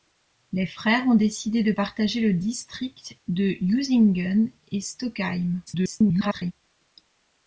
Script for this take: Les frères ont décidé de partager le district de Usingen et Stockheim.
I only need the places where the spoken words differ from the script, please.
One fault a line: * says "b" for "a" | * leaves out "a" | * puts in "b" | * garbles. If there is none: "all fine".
* garbles